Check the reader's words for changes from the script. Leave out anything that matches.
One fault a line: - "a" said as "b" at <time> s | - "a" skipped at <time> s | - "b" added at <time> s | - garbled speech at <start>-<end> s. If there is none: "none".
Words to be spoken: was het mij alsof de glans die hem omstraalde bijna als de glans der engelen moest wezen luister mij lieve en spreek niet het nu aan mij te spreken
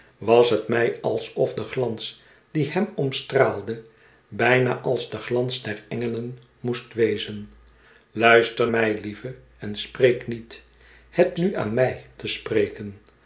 none